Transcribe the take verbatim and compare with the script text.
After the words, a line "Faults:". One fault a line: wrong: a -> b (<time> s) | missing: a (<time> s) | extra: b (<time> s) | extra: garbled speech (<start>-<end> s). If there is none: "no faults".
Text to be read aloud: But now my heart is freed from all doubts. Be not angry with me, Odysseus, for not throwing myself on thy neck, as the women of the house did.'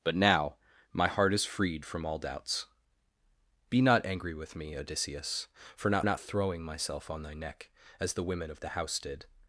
But now my heart is freed from all doubts. Be not angry with me, Odysseus, for not not throwing myself on thy neck, as the women of the house did.'
Faults:
extra: not (6.0 s)